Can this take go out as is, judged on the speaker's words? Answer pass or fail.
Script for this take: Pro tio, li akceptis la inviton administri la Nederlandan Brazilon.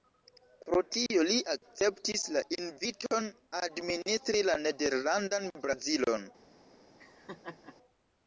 pass